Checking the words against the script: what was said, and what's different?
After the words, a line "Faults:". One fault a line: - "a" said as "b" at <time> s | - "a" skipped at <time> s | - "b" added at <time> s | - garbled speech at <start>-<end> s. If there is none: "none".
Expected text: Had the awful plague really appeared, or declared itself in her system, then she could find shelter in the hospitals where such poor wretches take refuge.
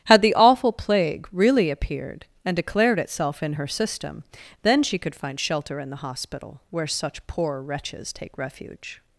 Had the awful plague really appeared, and declared itself in her system, then she could find shelter in the hospital where such poor wretches take refuge.
Faults:
- "or" said as "and" at 2.4 s
- "hospitals" said as "hospital" at 6.0 s